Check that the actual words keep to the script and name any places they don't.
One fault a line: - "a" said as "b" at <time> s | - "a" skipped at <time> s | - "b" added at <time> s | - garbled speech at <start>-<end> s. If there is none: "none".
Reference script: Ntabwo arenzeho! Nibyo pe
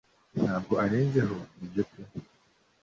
none